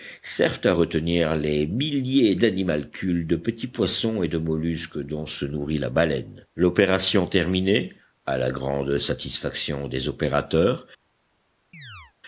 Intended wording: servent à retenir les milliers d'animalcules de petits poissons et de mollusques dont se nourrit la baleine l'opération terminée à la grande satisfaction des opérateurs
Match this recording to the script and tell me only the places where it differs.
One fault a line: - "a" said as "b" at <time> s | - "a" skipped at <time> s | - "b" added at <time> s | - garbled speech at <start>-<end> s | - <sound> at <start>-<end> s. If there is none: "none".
- chirp at 11.7-12.1 s